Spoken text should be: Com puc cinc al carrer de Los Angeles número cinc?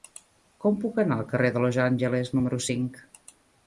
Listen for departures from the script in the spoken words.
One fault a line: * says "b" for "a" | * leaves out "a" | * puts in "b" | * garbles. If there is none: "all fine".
* says "anar" for "cinc"